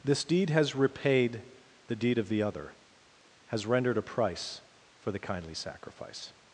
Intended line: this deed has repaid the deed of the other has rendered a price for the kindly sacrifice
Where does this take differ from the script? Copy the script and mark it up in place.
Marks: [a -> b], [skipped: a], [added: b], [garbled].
this deed has repaid the deed of the other has rendered a price for the kindly sacrifice